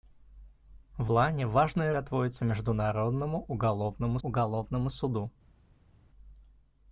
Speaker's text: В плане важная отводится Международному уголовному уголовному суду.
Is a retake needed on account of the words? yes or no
no